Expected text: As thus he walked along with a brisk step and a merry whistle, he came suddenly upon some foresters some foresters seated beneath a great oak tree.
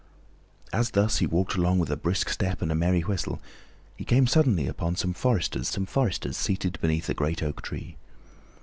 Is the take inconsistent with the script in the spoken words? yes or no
no